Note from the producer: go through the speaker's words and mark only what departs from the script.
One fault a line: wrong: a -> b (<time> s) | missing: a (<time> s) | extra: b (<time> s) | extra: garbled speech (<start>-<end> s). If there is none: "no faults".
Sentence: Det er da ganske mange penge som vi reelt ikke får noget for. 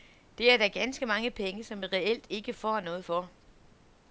no faults